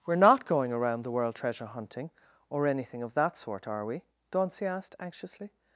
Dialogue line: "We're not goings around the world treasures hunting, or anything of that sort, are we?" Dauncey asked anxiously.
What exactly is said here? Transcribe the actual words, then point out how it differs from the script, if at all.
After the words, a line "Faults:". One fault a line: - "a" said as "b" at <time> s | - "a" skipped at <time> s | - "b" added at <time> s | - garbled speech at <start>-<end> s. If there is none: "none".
"We're not going around the world treasure hunting, or anything of that sort, are we?" Dauncey asked anxiously.
Faults:
- "goings" said as "going" at 0.5 s
- "treasures" said as "treasure" at 1.4 s